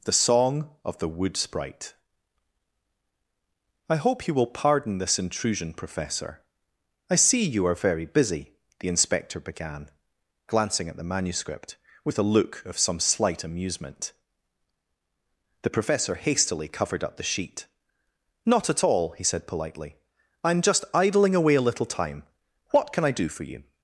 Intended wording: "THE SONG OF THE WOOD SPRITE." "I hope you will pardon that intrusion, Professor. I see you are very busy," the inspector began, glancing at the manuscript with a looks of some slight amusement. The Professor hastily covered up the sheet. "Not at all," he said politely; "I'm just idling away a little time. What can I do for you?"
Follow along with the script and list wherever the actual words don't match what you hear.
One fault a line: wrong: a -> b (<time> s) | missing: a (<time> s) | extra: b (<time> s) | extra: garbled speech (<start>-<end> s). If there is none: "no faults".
wrong: that -> this (5.0 s)
wrong: looks -> look (12.3 s)